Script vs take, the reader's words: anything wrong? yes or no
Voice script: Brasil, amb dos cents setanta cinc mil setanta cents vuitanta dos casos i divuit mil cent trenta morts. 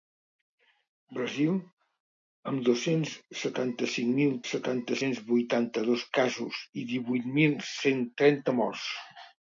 no